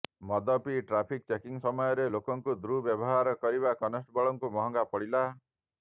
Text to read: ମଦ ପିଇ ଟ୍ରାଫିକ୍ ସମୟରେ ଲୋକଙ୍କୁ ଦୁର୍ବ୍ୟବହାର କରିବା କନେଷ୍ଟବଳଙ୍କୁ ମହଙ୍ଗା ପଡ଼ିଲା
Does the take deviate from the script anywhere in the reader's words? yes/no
yes